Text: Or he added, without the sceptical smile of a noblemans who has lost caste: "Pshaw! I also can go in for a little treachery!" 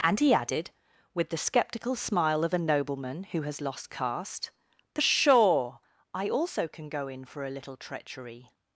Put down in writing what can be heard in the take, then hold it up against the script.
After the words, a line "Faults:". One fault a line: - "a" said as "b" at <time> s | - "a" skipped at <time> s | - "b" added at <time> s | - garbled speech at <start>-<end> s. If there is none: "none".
And he added, with the sceptical smile of a nobleman who has lost caste: "Pshaw! I also can go in for a little treachery!"
Faults:
- "Or" said as "And" at 0.0 s
- "without" said as "with" at 1.1 s
- "noblemans" said as "nobleman" at 2.6 s